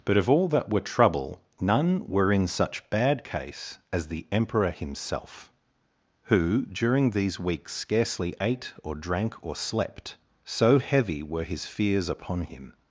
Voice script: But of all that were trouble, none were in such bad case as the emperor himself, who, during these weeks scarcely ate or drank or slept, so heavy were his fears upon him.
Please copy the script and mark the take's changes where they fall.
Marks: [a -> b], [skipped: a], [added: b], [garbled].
But of all that were trouble, none were in such bad case as the emperor himself, who, during these weeks scarcely ate or drank or slept, so heavy were his fears upon him.